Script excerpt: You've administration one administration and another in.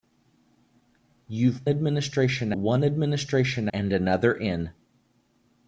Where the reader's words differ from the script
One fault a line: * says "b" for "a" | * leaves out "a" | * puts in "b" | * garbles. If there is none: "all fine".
all fine